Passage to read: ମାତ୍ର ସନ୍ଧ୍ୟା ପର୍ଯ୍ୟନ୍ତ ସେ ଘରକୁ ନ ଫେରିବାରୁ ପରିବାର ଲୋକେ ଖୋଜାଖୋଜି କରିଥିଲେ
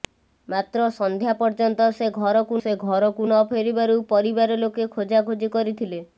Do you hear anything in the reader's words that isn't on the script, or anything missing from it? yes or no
yes